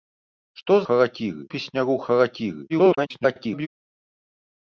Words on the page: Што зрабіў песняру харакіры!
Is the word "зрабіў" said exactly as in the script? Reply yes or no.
no